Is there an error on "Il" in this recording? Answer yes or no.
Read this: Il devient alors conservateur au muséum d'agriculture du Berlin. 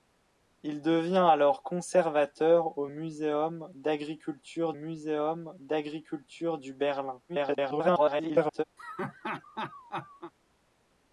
no